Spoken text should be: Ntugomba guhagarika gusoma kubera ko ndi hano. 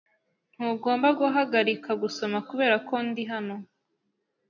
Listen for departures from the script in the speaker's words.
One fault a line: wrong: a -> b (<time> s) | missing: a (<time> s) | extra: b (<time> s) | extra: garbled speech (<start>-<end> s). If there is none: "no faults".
no faults